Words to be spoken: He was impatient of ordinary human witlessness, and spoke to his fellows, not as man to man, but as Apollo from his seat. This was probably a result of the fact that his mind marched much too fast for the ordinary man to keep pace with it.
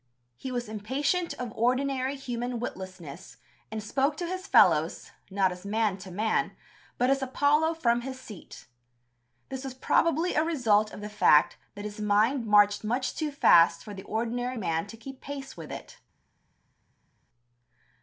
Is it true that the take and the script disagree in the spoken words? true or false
false